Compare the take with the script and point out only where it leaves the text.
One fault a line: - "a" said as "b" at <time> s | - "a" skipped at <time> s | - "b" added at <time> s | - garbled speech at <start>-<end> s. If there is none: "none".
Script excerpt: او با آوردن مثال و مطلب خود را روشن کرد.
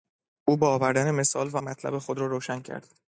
none